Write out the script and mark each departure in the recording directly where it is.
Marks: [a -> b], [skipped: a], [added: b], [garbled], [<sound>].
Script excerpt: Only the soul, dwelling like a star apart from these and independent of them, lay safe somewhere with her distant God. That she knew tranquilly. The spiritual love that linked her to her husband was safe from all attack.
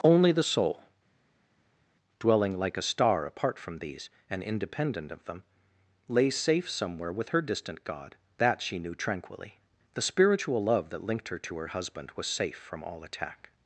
Only the soul, dwelling like a star apart from these and independent of them, lay safe somewhere with her distant God. That she knew tranquilly. The spiritual love that linked her to her husband was safe from all attack.